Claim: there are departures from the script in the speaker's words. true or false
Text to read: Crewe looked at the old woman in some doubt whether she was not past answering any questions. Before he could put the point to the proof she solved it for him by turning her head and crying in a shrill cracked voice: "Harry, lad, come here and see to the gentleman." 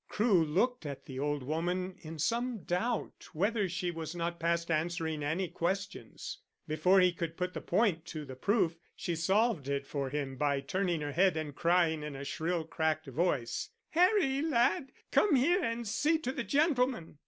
false